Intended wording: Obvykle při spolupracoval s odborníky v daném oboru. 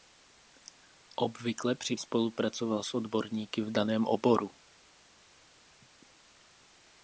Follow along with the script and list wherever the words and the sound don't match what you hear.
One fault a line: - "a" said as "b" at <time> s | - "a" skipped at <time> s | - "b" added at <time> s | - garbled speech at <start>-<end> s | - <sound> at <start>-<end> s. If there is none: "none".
none